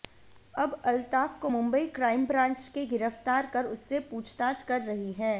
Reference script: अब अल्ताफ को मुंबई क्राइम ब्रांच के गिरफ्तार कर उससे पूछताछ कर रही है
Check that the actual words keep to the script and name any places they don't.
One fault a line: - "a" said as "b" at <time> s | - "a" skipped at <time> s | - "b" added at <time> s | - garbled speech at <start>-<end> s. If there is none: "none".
none